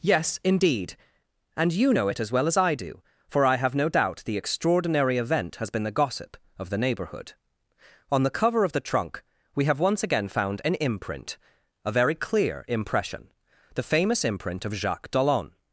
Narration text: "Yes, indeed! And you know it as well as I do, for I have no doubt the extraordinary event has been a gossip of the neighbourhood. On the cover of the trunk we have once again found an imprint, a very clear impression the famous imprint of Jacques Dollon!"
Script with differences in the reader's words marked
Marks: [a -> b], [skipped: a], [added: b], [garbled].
"Yes, indeed! And you know it as well as I do, for I have no doubt the extraordinary event has been [a -> the] gossip of the neighbourhood. On the cover of the trunk we have once again found an imprint, a very clear impression the famous imprint of Jacques Dollon!"